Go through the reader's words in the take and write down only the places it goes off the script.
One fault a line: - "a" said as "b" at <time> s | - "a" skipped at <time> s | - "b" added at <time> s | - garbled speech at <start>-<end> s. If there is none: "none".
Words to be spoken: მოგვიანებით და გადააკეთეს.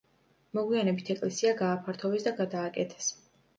- "ეკლესია გააფართოვეს" added at 1.2 s